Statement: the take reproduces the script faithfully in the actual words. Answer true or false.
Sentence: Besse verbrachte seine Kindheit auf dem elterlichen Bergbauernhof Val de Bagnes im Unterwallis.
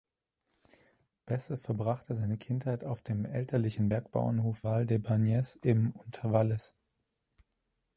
true